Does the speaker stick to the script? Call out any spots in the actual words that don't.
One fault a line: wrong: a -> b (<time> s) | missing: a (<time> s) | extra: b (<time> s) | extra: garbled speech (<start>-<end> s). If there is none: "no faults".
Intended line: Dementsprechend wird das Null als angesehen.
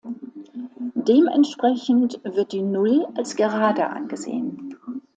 wrong: das -> die (2.5 s)
extra: gerade (3.4 s)